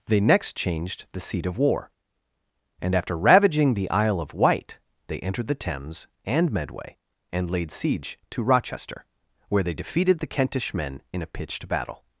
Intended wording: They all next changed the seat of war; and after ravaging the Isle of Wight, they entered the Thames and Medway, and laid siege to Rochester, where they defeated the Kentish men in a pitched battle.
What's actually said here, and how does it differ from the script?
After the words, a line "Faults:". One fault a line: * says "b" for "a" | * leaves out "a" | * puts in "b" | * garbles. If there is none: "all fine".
They next changed the seat of war; and after ravaging the Isle of Wight, they entered the Thames and Medway, and laid siege to Rochester, where they defeated the Kentish men in a pitched battle.
Faults:
* leaves out "all"